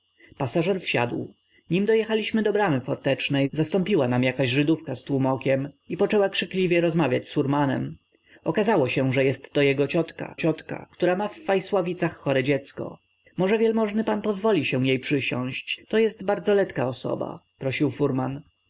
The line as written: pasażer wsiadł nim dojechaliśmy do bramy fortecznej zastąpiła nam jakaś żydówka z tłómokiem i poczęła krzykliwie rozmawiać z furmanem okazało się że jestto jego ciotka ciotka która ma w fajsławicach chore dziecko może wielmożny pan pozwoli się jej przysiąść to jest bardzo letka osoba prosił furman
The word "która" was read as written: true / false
true